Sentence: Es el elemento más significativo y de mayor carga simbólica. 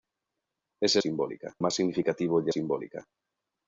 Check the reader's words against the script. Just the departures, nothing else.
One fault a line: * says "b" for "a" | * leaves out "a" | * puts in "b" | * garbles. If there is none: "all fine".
* says "simbólica" for "elemento"
* leaves out "mayor carga"